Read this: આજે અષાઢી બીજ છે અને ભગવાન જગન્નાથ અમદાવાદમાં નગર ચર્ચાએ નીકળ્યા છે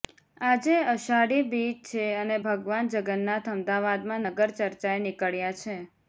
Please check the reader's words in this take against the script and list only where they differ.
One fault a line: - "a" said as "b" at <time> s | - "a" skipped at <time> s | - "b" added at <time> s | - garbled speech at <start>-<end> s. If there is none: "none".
none